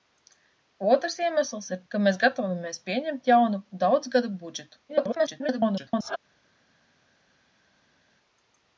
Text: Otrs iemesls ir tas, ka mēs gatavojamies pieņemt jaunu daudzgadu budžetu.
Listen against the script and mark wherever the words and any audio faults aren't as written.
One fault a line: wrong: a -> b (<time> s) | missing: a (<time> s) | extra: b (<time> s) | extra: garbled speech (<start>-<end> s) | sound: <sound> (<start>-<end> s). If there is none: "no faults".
missing: tas (1.8 s)
extra: garbled speech (4.9-6.2 s)